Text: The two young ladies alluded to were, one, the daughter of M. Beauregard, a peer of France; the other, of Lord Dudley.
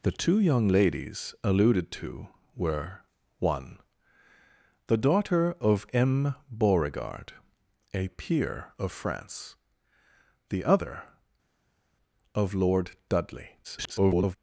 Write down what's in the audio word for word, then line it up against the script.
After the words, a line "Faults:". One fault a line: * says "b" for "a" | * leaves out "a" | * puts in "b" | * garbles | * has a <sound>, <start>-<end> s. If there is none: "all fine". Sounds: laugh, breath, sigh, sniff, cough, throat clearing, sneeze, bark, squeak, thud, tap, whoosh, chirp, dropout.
The two young ladies alluded to were, one, the daughter of M. Beauregard, a peer of France; the other, of Lord Dudley. [garbled]
Faults:
* garbles